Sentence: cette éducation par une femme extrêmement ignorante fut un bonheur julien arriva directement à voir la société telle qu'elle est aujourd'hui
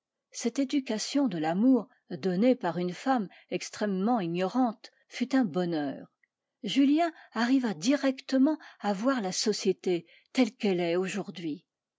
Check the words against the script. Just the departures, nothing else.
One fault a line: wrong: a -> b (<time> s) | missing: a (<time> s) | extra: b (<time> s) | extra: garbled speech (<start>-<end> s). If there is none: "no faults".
extra: de l'amour donnée (1.3 s)